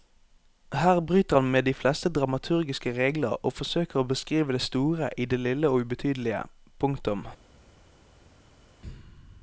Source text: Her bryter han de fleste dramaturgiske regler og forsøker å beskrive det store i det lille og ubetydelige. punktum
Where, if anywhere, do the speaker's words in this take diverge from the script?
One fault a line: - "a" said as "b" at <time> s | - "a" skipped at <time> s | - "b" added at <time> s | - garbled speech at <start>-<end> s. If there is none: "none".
- "med" added at 1.5 s